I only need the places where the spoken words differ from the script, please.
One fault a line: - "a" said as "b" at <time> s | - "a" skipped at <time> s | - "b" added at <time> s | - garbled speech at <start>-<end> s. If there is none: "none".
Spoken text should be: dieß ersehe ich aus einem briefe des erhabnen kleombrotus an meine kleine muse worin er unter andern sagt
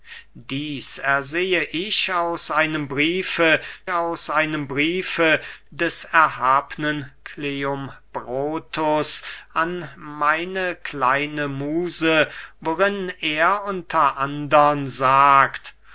- "aus einem briefe" added at 3.9 s